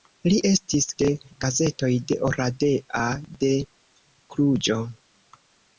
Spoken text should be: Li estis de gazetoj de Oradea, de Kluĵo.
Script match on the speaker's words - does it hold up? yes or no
yes